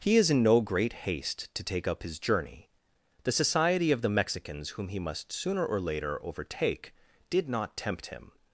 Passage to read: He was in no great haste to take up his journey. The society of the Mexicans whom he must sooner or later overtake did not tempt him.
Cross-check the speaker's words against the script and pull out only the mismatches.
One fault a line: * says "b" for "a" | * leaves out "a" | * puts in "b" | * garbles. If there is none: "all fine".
* says "is" for "was"